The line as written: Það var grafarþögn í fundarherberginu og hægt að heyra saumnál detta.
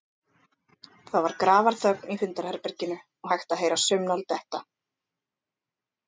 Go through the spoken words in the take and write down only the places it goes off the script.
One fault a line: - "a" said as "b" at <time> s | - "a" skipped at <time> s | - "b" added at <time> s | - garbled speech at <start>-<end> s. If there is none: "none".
none